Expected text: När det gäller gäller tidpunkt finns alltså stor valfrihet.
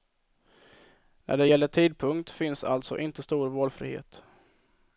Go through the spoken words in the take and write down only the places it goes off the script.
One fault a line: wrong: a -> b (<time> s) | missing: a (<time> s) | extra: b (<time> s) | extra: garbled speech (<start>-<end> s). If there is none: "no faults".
missing: gäller (1.7 s)
extra: inte (3.0 s)